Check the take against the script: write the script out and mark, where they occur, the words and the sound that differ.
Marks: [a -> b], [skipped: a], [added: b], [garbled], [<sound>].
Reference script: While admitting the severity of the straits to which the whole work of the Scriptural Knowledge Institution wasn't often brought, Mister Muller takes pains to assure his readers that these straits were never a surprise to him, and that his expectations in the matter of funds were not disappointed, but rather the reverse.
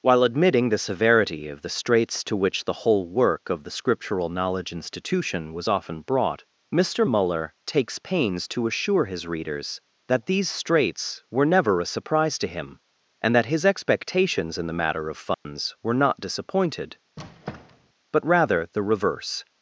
While admitting the severity of the straits to which the whole work of the Scriptural Knowledge Institution [wasn't -> was] often brought, Mister Muller takes pains to assure his readers that these straits were never a surprise to him, and that his expectations in the matter of funds [dropout] were not disappointed, [squeak] but rather the reverse.